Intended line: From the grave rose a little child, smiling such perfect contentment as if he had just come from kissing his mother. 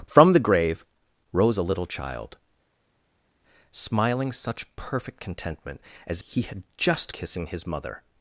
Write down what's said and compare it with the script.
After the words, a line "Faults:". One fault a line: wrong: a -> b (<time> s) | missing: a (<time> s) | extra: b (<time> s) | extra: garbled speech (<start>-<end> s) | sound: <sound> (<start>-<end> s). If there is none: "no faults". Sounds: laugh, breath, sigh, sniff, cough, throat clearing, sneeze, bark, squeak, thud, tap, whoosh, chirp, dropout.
From the grave rose a little child, smiling such perfect contentment as he had just kissing his mother.
Faults:
missing: if (6.2 s)
missing: come from (7.1 s)